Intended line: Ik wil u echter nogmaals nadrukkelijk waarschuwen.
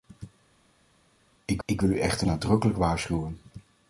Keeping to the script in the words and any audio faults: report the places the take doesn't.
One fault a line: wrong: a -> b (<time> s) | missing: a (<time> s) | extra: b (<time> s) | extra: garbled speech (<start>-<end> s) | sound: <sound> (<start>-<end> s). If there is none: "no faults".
extra: ik (1.6 s)
missing: nogmaals (2.3 s)